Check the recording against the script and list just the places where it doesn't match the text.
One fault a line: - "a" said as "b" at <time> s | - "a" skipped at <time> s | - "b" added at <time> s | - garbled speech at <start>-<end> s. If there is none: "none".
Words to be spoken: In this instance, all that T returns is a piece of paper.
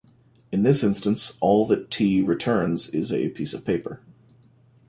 none